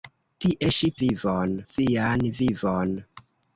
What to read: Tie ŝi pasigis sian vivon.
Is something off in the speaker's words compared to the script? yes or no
yes